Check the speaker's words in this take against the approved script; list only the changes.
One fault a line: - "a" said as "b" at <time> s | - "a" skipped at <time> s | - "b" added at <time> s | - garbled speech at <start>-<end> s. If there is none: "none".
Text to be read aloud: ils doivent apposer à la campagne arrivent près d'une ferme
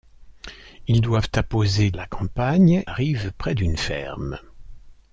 none